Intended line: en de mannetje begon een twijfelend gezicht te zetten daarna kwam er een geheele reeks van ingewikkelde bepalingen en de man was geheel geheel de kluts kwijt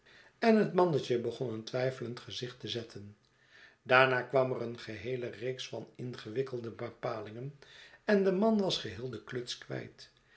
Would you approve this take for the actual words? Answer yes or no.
no